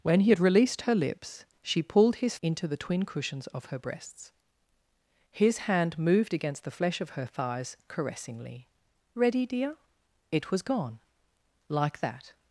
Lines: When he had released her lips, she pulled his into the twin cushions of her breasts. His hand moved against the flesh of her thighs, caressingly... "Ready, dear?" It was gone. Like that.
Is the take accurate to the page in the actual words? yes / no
yes